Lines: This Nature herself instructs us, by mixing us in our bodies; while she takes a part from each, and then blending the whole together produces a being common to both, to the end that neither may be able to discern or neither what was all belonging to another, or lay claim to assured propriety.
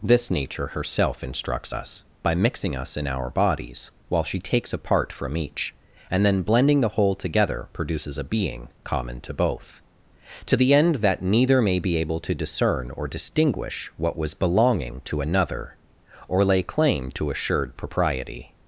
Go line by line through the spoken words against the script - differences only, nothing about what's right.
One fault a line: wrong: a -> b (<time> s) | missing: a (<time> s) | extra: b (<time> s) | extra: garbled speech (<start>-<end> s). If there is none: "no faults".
wrong: neither -> distinguish (13.1 s)
missing: all (14.3 s)